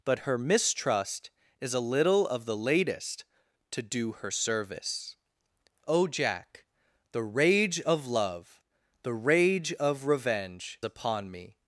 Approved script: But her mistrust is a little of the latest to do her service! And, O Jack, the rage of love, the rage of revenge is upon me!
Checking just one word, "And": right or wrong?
wrong